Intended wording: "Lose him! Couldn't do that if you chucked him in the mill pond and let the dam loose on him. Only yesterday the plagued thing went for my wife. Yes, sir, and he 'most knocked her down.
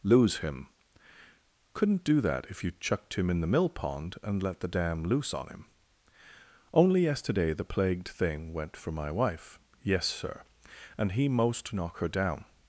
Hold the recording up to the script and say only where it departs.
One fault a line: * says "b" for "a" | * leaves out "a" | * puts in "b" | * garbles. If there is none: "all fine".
* says "knock" for "knocked"